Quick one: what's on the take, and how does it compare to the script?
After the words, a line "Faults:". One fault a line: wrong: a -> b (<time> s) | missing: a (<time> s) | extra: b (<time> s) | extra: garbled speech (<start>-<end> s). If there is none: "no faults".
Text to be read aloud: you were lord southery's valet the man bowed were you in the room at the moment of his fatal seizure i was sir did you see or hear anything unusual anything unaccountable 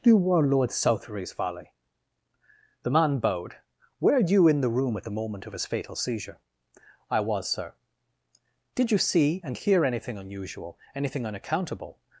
you were lord southery's valet the man bowed were you in the room at the moment of his fatal seizure i was sir did you see and hear anything unusual anything unaccountable
Faults:
wrong: or -> and (9.4 s)